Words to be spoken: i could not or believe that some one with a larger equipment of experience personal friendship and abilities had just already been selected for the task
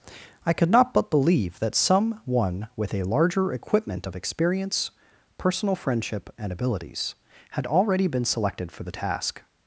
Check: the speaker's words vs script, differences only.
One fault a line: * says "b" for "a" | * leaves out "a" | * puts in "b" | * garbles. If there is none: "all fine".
* says "but" for "or"
* leaves out "just"